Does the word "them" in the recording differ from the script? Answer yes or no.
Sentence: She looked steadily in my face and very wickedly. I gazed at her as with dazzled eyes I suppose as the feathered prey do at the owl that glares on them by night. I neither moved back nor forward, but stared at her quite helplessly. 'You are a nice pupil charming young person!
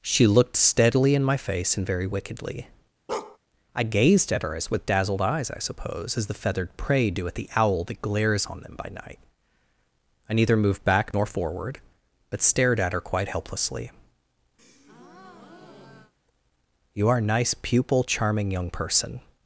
no